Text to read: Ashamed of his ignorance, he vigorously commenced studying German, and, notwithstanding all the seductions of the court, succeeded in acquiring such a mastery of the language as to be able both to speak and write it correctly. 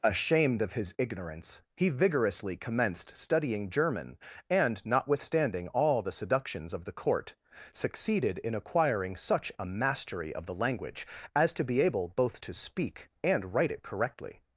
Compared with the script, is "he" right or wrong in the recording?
right